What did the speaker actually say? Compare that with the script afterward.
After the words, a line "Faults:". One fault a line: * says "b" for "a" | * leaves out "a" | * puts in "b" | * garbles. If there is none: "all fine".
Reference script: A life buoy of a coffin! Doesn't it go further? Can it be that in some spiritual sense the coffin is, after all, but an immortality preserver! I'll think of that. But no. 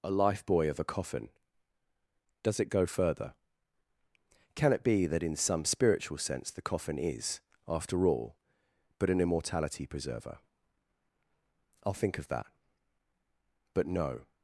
A life buoy of a coffin! Does it go further? Can it be that in some spiritual sense the coffin is, after all, but an immortality preserver! I'll think of that. But no.
Faults:
* says "Does" for "Doesn't"